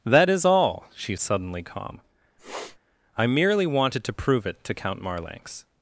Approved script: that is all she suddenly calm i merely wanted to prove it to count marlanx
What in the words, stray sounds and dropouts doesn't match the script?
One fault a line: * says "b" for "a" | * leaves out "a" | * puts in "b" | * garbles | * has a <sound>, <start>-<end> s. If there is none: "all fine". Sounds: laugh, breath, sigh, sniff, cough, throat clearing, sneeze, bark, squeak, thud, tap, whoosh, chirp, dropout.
* has a sniff, 2.4-2.8 s